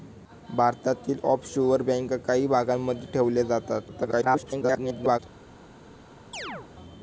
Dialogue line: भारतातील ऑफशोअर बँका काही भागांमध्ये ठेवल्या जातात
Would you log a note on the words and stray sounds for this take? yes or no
yes